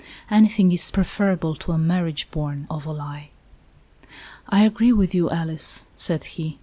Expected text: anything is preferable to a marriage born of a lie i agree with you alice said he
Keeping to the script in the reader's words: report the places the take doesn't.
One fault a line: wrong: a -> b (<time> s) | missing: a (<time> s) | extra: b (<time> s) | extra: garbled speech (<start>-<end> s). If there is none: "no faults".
no faults